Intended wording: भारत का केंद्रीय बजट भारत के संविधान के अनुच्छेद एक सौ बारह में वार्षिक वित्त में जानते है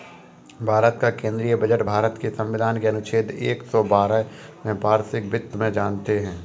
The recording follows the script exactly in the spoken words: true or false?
true